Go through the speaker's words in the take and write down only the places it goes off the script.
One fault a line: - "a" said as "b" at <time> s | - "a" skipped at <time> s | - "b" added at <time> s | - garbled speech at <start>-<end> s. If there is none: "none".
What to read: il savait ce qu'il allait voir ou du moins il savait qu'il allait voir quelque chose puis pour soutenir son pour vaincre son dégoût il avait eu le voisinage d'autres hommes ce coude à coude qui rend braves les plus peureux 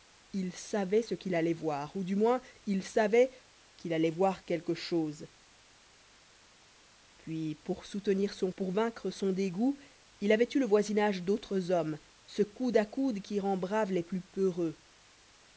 none